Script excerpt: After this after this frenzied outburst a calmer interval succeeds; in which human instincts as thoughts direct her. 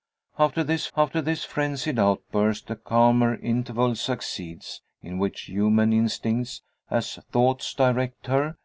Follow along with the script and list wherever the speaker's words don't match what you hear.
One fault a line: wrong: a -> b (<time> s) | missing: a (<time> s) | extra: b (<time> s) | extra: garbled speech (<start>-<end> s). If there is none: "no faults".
no faults